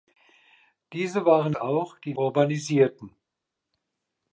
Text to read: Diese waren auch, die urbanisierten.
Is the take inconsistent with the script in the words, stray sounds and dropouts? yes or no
no